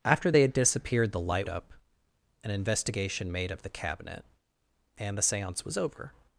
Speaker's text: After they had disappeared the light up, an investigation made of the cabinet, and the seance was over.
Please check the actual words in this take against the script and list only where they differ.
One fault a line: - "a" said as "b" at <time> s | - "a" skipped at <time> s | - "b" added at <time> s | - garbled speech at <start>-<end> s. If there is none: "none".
none